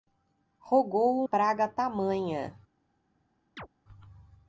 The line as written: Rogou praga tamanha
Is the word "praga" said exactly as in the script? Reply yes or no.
yes